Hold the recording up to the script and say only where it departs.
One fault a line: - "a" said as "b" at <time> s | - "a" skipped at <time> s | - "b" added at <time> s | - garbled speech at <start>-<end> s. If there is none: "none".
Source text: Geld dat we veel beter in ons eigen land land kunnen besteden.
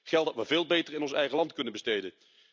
- "land" skipped at 1.5 s